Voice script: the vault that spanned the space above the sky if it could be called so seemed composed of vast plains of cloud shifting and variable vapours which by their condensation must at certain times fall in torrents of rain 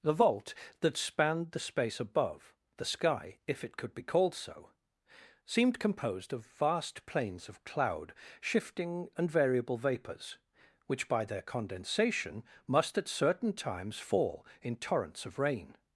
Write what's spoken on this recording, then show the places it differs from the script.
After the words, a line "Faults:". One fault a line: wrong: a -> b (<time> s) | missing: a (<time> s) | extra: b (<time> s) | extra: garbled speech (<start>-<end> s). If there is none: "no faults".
the vault that spanned the space above the sky if it could be called so seemed composed of vast plains of cloud shifting and variable vapours which by their condensation must at certain times fall in torrents of rain
Faults:
no faults